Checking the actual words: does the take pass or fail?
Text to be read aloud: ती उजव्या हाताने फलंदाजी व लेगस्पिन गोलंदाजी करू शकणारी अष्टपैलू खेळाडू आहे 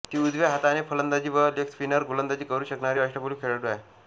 pass